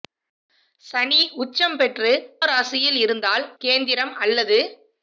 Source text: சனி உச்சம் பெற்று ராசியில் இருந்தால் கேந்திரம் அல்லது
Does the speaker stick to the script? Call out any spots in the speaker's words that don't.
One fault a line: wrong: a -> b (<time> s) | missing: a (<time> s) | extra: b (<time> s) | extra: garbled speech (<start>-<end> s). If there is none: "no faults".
no faults